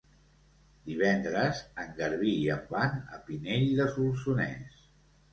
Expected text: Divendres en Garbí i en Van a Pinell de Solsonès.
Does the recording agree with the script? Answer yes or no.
yes